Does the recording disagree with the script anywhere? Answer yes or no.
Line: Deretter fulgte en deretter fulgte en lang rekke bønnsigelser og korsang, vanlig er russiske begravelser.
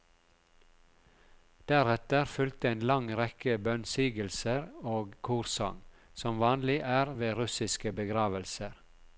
yes